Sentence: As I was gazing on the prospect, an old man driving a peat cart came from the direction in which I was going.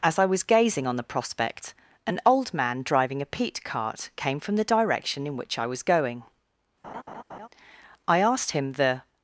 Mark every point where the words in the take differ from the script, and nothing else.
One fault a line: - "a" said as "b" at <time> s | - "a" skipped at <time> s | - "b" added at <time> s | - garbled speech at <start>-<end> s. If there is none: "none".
- "I asked him the" added at 8.1 s